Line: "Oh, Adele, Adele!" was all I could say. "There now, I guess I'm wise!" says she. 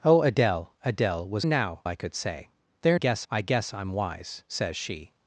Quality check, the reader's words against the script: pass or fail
fail